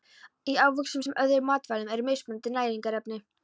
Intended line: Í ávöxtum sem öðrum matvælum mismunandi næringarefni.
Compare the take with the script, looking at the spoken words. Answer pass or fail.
fail